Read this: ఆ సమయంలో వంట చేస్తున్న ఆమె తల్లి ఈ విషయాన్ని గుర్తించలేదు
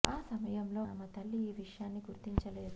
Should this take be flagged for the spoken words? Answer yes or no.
yes